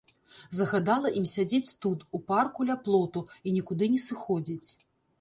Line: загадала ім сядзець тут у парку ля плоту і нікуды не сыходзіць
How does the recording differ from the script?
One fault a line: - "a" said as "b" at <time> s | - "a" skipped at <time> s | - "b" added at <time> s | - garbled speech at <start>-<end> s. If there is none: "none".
none